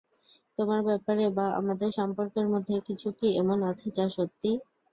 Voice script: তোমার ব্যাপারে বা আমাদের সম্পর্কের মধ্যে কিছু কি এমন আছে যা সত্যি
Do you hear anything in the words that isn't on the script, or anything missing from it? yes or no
no